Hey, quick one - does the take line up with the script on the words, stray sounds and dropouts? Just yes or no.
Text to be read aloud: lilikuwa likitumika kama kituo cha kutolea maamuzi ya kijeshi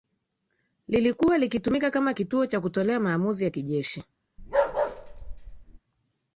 no